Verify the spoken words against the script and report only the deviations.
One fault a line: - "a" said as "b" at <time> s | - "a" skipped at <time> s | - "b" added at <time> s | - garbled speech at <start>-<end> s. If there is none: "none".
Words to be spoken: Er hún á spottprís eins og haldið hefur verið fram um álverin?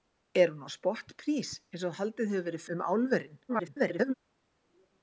- "fram" skipped at 2.6 s
- garbled speech at 3.5-4.1 s